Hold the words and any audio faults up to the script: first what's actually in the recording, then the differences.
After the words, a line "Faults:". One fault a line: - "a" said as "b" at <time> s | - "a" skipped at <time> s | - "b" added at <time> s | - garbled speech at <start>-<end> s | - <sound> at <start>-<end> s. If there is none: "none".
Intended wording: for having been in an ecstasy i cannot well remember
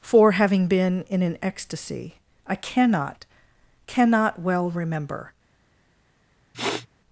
for having been in an ecstasy i cannot cannot well remember
Faults:
- "cannot" added at 3.9 s
- sniff at 6.5-6.9 s